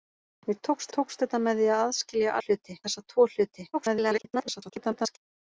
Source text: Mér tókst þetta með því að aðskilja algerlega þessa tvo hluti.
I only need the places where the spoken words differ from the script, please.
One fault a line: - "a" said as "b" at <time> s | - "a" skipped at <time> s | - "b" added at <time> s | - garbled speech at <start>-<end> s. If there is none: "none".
- "tókst" added at 1.0 s
- "algerlega" said as "hluti" at 2.5 s
- garbled speech at 3.7-5.2 s